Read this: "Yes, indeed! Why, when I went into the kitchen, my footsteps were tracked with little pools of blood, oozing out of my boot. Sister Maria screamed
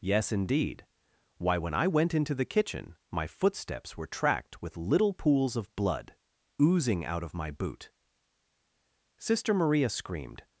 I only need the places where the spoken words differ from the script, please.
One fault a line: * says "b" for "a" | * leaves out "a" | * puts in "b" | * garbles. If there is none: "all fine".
all fine